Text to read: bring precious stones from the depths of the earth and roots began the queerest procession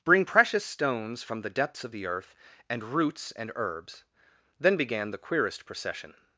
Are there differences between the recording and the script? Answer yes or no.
yes